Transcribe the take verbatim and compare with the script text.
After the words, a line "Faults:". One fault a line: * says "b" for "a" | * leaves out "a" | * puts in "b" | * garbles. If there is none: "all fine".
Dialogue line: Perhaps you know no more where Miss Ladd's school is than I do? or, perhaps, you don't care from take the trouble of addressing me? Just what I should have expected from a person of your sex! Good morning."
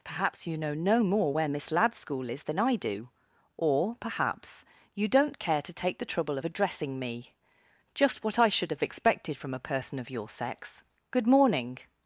Perhaps you know no more where Miss Ladd's school is than I do? or, perhaps, you don't care to take the trouble of addressing me? Just what I should have expected from a person of your sex! Good morning."
Faults:
* says "to" for "from"